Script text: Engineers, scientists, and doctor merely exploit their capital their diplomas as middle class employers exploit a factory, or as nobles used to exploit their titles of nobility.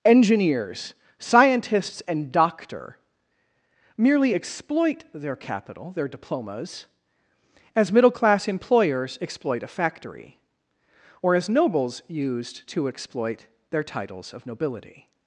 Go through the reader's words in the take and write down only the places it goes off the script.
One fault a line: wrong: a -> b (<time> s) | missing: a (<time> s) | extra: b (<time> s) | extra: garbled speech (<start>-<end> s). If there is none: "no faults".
no faults